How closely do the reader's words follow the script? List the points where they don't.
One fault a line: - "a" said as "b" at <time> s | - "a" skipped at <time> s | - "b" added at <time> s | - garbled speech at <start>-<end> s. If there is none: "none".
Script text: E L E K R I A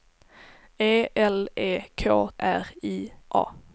none